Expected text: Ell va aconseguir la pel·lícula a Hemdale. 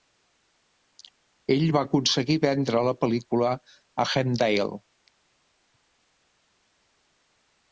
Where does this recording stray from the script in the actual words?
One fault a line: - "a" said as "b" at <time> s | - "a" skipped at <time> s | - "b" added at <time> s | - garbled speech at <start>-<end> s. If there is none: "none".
- "vendre" added at 2.4 s